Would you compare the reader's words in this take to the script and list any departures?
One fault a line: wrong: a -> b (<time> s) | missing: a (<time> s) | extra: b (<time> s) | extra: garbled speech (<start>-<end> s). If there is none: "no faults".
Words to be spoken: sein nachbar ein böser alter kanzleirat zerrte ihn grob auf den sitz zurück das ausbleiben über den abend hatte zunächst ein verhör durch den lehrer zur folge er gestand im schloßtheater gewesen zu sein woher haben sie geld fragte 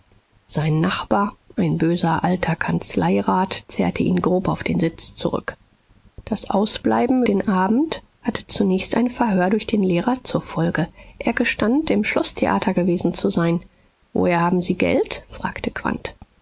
missing: über (7.2 s)